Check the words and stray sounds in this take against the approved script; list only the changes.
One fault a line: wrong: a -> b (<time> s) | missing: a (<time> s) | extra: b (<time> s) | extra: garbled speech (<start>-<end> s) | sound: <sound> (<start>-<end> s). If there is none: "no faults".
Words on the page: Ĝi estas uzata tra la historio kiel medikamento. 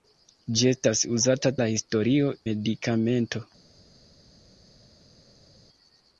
missing: tra (1.5 s)
missing: kiel (2.3 s)